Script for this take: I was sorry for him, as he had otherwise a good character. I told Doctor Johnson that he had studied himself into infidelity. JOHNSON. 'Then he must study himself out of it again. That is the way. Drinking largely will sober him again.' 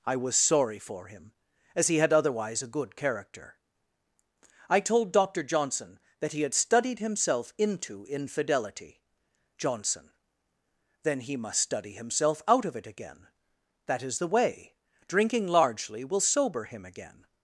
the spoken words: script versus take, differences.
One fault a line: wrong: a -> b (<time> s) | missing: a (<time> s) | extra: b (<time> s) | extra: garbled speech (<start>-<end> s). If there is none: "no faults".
no faults